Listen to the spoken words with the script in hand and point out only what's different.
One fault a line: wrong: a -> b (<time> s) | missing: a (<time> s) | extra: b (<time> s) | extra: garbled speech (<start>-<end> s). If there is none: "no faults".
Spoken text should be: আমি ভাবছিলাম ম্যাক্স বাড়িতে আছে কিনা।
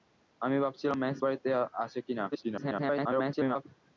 extra: garbled speech (2.3-3.6 s)